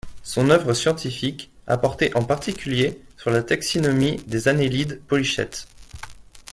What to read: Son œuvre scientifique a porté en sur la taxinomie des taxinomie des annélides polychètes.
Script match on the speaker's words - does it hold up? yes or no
no